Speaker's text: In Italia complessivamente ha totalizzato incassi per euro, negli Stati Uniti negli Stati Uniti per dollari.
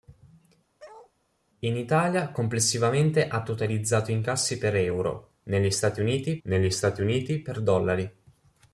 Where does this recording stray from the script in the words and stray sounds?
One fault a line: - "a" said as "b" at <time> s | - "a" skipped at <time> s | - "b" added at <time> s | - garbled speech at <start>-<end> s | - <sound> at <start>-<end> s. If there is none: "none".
- bark at 0.8-1.1 s